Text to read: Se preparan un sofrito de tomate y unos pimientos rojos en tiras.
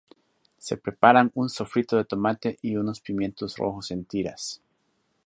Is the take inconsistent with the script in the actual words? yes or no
no